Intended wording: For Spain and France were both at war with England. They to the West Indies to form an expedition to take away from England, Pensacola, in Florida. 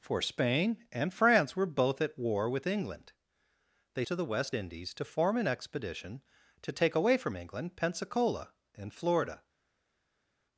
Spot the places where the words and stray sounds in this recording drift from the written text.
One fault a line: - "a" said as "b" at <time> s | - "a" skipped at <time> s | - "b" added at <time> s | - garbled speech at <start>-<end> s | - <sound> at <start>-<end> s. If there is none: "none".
none